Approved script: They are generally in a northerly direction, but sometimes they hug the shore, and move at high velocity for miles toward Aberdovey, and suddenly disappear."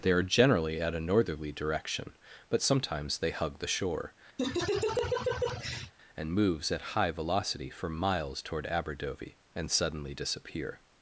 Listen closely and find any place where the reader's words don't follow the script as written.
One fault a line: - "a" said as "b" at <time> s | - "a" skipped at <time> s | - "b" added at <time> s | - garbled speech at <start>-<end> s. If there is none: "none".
- "in" said as "at" at 0.8 s
- "move" said as "moves" at 6.3 s